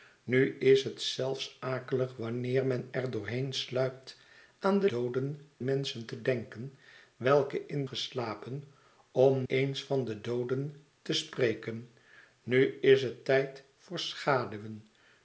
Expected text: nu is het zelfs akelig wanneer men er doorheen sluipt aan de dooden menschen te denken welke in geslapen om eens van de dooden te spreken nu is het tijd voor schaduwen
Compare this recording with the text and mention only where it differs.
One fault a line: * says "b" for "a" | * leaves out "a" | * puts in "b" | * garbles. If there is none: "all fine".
all fine